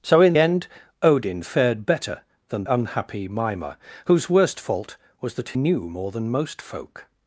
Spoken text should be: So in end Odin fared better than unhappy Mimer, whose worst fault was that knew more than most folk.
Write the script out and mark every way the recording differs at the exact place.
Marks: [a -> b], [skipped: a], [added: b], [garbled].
So in end Odin fared better than unhappy Mimer, whose worst fault was that knew more than most folk.